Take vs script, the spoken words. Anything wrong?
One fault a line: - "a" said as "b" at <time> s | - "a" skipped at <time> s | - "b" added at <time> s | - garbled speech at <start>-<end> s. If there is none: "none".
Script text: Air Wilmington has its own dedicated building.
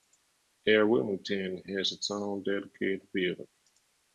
none